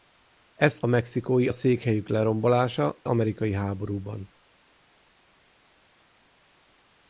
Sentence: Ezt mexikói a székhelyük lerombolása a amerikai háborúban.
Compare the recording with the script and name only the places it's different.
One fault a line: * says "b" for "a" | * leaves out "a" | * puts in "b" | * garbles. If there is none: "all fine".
all fine